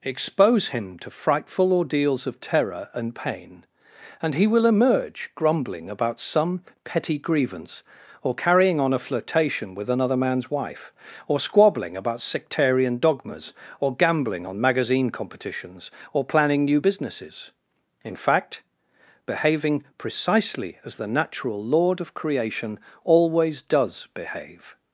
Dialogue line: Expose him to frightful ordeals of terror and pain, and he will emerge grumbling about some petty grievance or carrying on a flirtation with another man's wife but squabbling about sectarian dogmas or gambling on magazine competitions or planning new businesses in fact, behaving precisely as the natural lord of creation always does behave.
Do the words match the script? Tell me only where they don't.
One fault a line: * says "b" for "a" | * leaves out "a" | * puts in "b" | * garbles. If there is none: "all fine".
* says "or" for "but"